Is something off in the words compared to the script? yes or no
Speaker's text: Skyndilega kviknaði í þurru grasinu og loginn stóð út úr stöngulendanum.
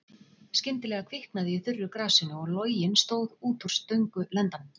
no